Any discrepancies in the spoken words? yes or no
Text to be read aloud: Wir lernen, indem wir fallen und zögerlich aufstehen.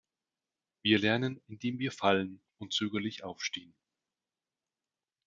no